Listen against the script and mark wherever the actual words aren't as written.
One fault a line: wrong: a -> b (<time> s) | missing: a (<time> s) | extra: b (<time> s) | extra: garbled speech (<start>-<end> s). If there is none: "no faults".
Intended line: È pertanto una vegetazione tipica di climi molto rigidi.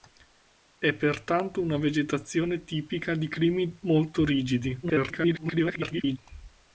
extra: garbled speech (4.8-6.2 s)